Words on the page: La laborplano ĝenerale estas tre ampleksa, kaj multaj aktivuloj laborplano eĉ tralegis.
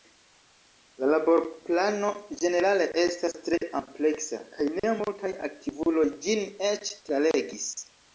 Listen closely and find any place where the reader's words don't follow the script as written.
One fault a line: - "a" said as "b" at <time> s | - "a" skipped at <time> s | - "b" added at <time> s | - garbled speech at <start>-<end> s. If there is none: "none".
- "ne" added at 4.8 s
- "laborplano" said as "ĝin" at 6.3 s